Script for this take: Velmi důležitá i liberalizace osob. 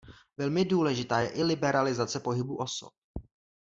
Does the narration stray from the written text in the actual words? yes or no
yes